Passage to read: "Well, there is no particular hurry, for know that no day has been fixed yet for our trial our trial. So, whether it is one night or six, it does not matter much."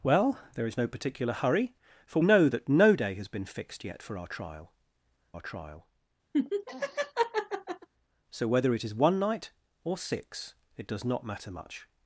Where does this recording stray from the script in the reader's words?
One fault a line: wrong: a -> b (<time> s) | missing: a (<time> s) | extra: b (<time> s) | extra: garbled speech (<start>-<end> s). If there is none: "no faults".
no faults